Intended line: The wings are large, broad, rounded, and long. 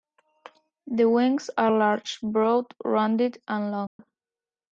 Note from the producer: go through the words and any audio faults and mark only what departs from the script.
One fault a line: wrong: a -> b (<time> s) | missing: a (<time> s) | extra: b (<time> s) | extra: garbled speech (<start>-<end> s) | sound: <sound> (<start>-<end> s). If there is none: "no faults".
sound: dropout (3.9-4.0 s)